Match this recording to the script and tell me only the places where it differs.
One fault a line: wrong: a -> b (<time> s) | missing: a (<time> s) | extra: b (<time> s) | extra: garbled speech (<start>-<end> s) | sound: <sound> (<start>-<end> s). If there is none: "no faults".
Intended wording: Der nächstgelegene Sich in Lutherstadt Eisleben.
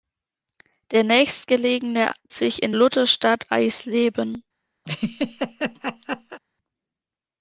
sound: laugh (4.8-6.4 s)